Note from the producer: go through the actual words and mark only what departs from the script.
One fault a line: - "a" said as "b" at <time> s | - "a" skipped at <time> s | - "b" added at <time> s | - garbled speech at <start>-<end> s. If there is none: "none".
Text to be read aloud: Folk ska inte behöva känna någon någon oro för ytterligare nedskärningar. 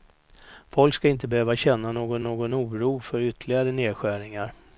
none